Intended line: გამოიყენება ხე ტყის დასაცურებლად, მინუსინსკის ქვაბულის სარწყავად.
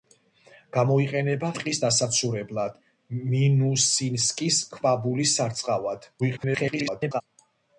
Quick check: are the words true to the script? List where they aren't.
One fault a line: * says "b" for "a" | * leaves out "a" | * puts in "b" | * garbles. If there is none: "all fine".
* leaves out "ხე"
* garbles